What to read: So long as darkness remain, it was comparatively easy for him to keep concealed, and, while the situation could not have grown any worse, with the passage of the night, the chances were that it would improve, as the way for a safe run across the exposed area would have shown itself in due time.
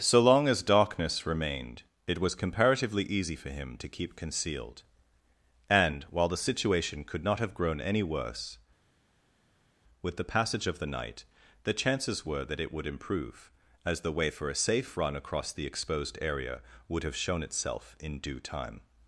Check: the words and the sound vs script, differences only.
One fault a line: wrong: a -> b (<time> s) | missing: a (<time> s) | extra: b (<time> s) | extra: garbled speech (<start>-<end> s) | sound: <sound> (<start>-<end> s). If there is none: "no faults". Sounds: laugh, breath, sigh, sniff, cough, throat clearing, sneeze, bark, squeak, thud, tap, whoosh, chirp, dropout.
wrong: remain -> remained (1.3 s)